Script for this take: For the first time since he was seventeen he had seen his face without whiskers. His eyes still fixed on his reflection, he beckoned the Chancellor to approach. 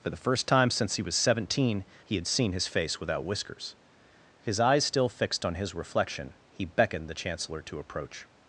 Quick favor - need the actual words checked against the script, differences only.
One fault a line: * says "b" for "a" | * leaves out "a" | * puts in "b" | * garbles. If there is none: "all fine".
all fine